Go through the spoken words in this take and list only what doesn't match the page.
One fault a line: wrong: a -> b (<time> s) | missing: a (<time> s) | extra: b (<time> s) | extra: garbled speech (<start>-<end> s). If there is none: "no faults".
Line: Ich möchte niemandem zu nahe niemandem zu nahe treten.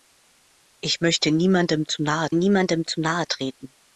no faults